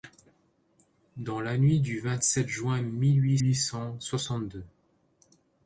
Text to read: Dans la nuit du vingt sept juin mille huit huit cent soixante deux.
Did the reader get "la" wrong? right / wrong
right